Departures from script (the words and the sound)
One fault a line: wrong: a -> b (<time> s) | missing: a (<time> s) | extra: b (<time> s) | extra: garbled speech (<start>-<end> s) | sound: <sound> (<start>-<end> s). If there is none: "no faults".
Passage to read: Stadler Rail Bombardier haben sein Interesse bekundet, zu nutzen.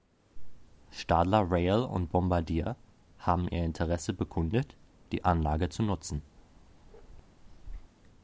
extra: und (1.8 s)
wrong: sein -> ihr (3.5 s)
extra: die Anlage (5.1 s)
sound: bark (6.4-7.9 s)